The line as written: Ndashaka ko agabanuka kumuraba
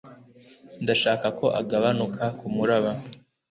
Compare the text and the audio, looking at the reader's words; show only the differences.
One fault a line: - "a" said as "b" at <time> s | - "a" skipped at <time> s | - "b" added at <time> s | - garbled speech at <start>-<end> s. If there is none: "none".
none